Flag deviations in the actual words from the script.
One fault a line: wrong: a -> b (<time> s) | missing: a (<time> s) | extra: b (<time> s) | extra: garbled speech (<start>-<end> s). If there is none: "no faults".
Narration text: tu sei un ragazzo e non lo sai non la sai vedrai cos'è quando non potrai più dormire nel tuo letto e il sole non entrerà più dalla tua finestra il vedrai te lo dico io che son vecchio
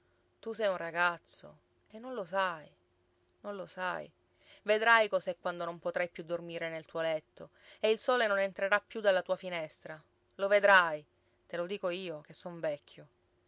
wrong: la -> lo (3.5 s)
wrong: il -> lo (10.3 s)